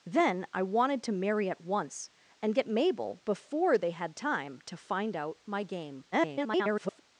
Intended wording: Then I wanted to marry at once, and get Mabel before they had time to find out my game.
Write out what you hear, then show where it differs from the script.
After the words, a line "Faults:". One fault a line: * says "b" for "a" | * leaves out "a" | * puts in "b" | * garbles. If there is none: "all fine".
Then I wanted to marry at once, and get Mabel before they had time to find out my game. [garbled]
Faults:
* garbles